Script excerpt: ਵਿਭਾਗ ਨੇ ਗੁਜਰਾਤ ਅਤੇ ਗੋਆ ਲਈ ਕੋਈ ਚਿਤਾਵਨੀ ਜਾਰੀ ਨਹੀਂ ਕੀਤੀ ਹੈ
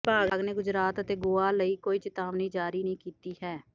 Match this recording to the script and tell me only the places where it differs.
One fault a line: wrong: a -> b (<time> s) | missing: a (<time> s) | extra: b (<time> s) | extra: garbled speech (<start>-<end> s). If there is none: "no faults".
no faults